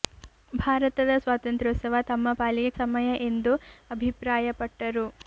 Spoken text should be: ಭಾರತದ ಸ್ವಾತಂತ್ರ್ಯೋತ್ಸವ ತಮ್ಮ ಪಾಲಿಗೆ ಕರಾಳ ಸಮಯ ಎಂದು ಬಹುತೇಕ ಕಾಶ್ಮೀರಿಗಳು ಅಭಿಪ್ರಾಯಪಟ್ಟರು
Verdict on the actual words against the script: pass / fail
fail